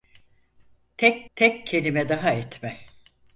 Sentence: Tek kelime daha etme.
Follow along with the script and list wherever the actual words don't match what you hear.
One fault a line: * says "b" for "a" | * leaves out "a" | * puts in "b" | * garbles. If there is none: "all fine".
* puts in "tek"